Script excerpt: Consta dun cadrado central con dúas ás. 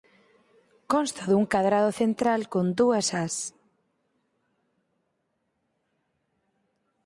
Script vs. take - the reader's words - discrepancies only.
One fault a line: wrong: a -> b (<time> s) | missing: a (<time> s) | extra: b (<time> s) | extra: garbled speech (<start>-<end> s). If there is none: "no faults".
no faults